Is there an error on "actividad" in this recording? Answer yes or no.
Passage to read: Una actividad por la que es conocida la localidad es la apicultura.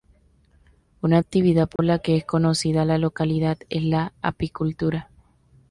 no